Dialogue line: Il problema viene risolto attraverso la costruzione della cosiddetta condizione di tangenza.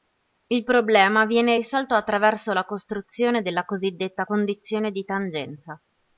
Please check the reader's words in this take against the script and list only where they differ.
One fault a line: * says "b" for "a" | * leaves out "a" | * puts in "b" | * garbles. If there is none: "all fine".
all fine